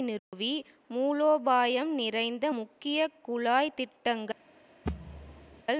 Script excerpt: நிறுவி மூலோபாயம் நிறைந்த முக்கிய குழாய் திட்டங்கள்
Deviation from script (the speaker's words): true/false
false